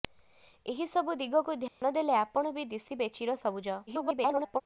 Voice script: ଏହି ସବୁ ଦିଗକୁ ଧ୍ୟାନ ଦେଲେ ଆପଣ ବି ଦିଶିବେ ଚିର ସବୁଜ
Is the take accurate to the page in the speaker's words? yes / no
no